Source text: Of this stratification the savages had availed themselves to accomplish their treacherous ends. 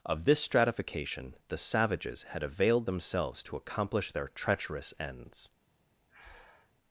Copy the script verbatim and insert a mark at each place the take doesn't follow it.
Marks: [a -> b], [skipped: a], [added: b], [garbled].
Of this stratification the savages had availed themselves to accomplish their treacherous ends.